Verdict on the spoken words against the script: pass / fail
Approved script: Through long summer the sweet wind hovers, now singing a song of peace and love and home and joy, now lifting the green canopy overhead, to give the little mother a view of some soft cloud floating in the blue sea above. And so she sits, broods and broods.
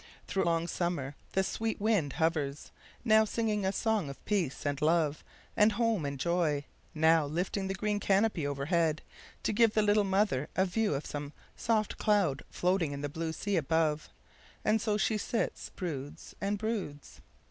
pass